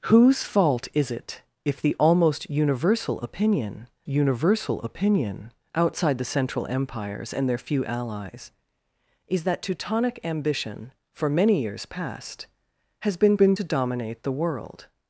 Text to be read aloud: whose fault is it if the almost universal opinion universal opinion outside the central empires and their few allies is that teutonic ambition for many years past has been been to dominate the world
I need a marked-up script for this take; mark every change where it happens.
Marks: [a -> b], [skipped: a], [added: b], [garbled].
whose fault is it if the almost universal opinion universal opinion outside the central empires and their few allies is that teutonic ambition for many years past has been been to dominate the world